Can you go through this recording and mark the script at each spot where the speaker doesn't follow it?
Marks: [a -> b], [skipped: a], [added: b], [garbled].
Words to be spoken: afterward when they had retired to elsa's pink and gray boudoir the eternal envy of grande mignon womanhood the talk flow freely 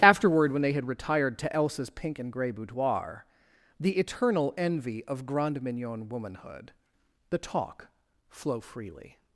afterward when they had retired to elsa's pink and gray boudoir the eternal envy of grande mignon womanhood the talk flow freely